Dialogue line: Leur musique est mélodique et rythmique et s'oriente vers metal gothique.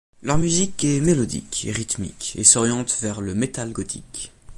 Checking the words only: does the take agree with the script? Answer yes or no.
no